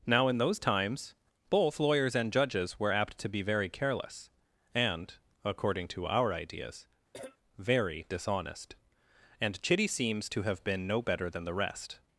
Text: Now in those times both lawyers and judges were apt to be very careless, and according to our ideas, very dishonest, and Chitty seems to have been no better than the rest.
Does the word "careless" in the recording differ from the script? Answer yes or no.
no